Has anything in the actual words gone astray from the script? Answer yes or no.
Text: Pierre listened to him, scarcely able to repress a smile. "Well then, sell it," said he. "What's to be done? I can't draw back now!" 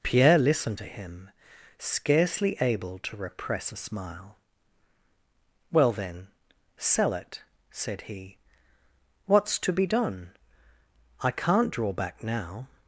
no